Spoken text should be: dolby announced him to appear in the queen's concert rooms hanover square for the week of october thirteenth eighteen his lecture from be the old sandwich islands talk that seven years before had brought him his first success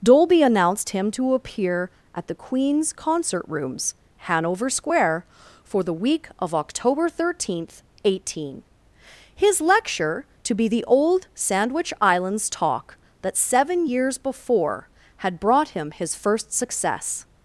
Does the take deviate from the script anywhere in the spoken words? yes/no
yes